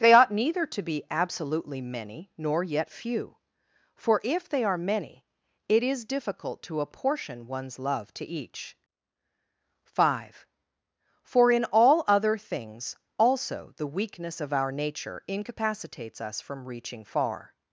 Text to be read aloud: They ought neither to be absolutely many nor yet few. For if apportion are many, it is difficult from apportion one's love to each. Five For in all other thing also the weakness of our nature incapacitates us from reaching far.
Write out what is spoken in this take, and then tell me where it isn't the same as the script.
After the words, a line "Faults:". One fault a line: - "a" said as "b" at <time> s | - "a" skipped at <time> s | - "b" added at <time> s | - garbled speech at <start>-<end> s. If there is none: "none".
They ought neither to be absolutely many nor yet few. For if they are many, it is difficult to apportion one's love to each. Five For in all other things also the weakness of our nature incapacitates us from reaching far.
Faults:
- "apportion" said as "they" at 4.5 s
- "from" said as "to" at 6.6 s
- "thing" said as "things" at 12.4 s